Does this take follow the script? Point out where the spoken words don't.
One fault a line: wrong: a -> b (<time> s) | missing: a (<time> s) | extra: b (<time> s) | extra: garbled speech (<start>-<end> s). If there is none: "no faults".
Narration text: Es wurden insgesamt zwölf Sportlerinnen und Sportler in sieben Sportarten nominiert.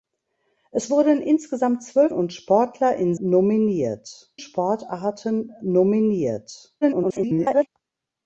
missing: Sportlerinnen (2.1 s)
wrong: sieben -> nominiert (3.2 s)
extra: garbled speech (6.8-7.7 s)